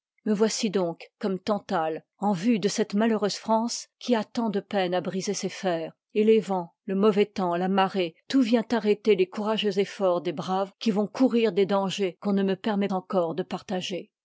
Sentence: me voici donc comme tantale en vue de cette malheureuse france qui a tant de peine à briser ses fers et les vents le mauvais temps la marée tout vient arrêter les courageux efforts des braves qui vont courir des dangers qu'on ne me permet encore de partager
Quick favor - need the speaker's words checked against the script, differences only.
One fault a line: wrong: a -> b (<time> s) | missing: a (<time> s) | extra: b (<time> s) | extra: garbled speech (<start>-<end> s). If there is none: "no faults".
no faults